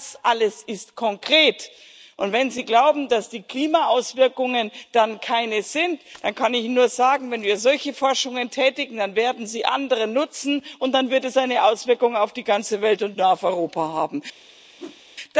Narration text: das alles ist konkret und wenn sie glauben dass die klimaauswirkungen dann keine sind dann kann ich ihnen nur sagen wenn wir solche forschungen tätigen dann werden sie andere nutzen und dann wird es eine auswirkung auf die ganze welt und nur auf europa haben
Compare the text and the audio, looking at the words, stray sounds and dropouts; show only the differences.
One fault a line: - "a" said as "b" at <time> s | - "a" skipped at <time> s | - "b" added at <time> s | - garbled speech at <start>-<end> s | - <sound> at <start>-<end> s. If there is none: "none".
- whoosh at 14.8-15.0 s